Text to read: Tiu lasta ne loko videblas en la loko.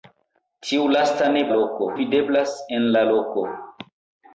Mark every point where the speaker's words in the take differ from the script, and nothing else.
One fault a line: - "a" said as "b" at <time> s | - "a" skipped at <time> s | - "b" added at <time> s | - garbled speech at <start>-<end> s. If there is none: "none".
none